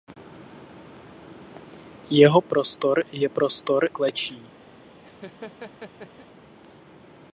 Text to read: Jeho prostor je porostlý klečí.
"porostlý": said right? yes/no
no